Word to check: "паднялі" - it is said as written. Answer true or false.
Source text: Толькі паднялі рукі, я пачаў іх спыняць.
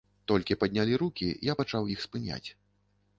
true